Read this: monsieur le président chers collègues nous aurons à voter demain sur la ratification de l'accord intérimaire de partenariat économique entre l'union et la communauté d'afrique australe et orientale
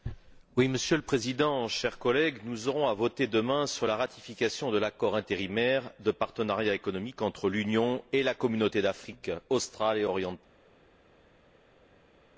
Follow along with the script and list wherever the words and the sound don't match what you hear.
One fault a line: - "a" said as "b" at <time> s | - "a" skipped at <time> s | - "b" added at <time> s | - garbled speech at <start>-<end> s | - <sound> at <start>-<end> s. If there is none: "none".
none